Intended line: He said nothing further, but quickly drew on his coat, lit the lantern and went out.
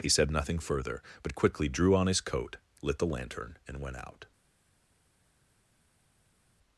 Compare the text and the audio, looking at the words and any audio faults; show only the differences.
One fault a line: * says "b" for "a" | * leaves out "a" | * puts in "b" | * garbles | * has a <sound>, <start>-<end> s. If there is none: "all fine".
all fine